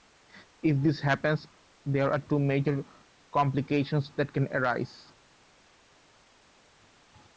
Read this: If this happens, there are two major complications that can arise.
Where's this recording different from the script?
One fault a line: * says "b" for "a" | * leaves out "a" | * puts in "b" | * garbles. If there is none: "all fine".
all fine